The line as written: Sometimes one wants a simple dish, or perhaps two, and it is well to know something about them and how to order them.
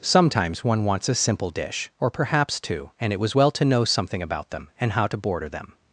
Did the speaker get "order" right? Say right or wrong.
wrong